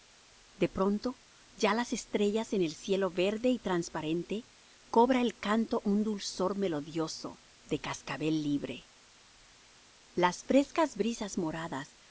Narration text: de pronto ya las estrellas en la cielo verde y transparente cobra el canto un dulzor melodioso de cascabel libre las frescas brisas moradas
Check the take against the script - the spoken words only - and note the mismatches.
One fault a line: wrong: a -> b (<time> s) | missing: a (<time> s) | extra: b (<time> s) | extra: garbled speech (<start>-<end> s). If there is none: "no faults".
wrong: la -> el (2.6 s)